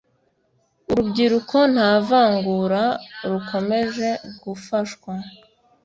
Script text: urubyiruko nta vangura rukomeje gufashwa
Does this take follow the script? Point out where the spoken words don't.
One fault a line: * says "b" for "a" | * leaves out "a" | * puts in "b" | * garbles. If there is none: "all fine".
all fine